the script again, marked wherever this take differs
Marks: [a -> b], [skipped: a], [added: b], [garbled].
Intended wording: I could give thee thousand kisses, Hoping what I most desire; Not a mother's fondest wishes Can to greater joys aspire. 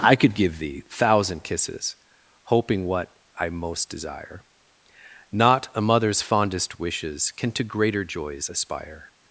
I could give thee thousand kisses, Hoping what I most desire; Not a mother's fondest wishes Can to greater joys aspire.